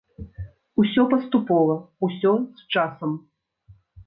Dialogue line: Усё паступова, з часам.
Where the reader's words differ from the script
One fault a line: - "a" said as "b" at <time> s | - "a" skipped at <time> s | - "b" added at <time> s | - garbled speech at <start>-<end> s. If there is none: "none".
- "усё" added at 2.1 s